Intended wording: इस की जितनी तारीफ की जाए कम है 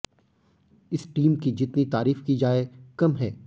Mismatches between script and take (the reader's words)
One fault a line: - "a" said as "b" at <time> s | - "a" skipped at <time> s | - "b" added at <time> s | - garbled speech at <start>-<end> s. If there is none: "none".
- "टीम" added at 1.1 s